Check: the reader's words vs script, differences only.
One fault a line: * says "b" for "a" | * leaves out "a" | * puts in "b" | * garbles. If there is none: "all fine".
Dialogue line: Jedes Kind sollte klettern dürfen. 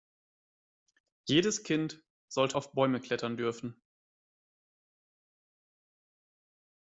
* puts in "auf Bäume"